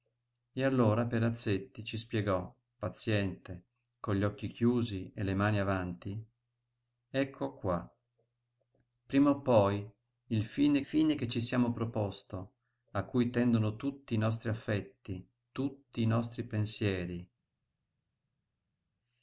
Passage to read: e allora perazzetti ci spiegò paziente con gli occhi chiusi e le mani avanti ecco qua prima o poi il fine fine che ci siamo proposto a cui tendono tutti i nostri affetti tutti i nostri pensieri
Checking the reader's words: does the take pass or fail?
pass